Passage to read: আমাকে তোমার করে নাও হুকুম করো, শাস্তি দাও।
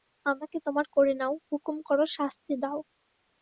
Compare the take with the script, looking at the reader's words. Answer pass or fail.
pass